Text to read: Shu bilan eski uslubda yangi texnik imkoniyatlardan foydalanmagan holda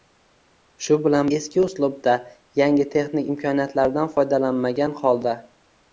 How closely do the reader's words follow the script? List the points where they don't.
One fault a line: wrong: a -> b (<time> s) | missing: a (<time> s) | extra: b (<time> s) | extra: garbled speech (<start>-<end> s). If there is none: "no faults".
no faults